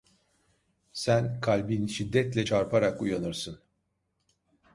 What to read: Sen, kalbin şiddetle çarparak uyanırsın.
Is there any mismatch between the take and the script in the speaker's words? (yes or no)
no